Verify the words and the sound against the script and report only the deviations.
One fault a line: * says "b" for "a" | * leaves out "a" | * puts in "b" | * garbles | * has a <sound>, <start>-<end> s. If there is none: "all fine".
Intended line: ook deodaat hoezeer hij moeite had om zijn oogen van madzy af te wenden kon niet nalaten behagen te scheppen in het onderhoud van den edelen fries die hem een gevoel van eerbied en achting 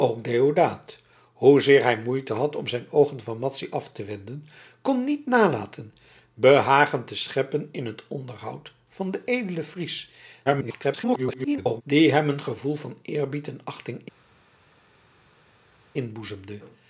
* garbles